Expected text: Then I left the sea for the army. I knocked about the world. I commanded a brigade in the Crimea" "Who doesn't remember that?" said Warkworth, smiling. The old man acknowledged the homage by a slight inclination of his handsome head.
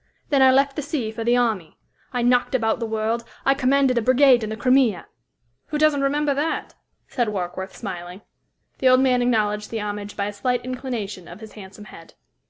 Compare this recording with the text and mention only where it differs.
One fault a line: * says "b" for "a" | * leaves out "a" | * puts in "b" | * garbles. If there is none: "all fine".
all fine